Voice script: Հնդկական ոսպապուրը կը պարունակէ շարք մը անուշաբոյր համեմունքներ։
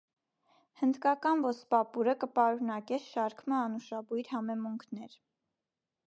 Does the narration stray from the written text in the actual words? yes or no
no